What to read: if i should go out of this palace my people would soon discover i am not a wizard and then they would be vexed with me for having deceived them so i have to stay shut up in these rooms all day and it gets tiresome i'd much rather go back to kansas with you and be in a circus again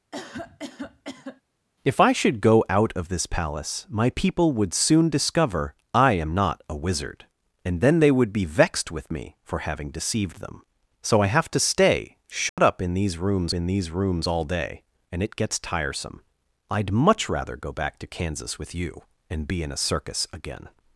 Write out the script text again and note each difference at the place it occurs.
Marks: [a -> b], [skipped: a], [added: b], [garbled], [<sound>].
[cough] if i should go out of this palace my people would soon discover i am not a wizard and then they would be vexed with me for having deceived them so i have to stay shut [dropout] up in these rooms [added: in these rooms] all day and it gets tiresome i'd much rather go back to kansas with you and be in a circus again